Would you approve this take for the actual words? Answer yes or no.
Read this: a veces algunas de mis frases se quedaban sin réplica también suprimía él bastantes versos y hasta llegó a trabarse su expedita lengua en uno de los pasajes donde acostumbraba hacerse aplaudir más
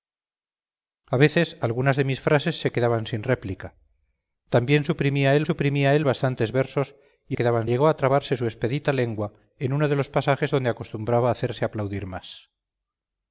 no